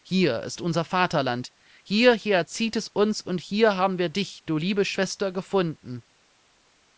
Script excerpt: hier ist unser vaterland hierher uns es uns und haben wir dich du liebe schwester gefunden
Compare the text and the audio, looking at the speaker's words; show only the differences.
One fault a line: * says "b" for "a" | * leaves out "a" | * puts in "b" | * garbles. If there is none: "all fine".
* says "zieht" for "uns"
* puts in "hier"